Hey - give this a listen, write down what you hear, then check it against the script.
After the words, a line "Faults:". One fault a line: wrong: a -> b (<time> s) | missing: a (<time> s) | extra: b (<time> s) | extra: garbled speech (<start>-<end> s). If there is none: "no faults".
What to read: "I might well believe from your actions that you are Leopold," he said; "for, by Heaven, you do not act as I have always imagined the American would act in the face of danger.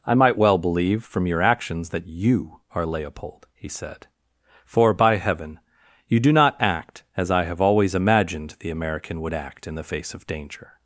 "I might well believe from your actions that you are Leopold," he said; "for, by Heaven, you do not act as I have always imagined the American would act in the face of danger.
Faults:
no faults